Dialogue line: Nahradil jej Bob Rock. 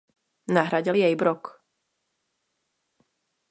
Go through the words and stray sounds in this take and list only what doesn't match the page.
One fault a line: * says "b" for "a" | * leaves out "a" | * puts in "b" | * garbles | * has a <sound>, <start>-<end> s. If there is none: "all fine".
* leaves out "Bob"